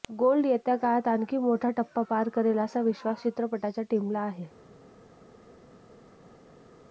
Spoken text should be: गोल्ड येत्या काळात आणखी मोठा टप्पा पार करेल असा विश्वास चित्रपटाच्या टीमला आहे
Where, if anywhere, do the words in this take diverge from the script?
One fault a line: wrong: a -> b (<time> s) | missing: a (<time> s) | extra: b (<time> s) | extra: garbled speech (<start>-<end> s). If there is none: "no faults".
no faults